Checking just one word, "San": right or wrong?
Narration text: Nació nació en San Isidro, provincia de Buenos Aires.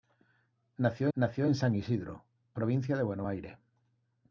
right